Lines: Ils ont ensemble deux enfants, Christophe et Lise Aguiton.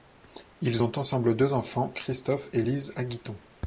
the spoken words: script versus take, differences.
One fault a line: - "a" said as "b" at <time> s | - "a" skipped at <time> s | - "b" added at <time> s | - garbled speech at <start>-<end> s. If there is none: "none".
none